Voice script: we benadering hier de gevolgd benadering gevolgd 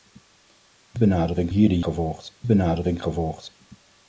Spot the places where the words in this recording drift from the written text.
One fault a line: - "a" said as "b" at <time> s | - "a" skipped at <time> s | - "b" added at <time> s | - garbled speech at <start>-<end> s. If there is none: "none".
none